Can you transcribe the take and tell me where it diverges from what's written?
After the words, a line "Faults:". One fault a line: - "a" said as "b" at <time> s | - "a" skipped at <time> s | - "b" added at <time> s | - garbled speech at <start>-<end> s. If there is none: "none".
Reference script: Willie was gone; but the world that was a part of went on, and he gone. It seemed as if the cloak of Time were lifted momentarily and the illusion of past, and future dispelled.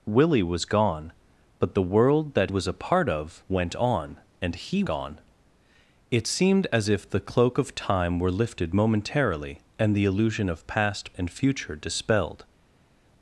Willie was gone; but the world that was a part of went on, and he gone. It seemed as if the cloak of Time were lifted momentarily and the illusion of past, and future dispelled.
Faults:
none